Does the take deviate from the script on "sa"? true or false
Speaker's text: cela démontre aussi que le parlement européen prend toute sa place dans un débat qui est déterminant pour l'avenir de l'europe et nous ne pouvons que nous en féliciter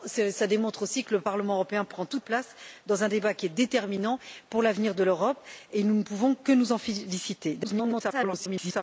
true